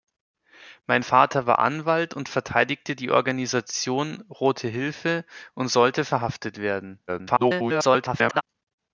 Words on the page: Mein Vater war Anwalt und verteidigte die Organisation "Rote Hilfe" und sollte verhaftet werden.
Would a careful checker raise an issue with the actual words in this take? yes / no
yes